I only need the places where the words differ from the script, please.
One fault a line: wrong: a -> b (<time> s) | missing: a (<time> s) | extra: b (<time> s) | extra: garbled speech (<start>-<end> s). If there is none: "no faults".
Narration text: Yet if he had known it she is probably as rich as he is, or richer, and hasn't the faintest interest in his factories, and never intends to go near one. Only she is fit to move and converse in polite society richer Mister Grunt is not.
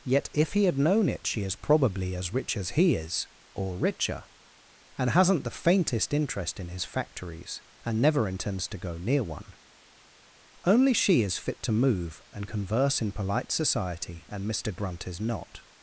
wrong: richer -> and (14.3 s)